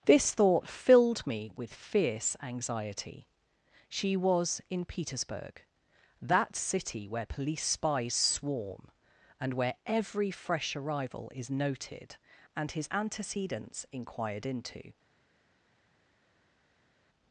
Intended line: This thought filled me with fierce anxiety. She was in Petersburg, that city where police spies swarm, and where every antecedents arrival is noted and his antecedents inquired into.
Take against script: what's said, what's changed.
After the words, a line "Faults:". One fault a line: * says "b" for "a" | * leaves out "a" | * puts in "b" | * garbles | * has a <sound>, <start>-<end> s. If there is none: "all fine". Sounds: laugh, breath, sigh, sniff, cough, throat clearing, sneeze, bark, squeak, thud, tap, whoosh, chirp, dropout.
This thought filled me with fierce anxiety. She was in Petersburg, that city where police spies swarm, and where every fresh arrival is noted and his antecedents inquired into.
Faults:
* says "fresh" for "antecedents"